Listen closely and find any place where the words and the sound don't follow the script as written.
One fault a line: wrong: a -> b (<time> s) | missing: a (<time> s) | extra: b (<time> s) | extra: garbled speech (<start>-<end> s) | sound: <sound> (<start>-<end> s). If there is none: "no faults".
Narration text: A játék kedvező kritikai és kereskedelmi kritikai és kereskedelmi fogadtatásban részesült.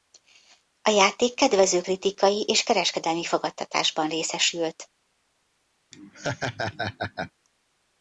missing: kritikai és kereskedelmi (3.2 s)
sound: laugh (5.9-7.3 s)